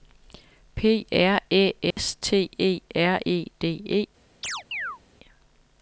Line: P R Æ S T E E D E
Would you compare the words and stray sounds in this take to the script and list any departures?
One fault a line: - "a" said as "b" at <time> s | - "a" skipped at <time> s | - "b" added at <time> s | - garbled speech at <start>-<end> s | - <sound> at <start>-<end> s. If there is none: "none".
- dropout at 1.9-2.0 s
- "R" added at 3.0 s
- chirp at 4.4-5.0 s